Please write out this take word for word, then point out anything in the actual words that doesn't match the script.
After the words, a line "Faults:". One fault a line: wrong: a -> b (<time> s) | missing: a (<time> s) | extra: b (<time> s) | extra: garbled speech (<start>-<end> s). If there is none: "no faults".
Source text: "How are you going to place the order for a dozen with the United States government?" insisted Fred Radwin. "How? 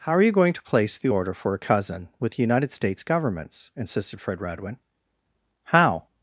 "How are you going to place the order for a cousin with the United States governments?" insisted Fred Radwin. "How?
Faults:
wrong: dozen -> cousin (1.6 s)
wrong: government -> governments (3.0 s)